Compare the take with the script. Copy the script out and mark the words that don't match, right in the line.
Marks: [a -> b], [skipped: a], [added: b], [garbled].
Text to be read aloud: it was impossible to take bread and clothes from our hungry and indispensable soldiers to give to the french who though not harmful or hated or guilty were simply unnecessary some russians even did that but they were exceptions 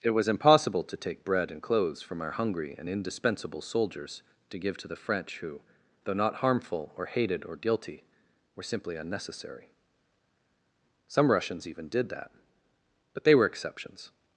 it was impossible to take bread and clothes from our hungry and indispensable soldiers to give to the french who though not harmful or hated or guilty were simply unnecessary some russians even did that but they were exceptions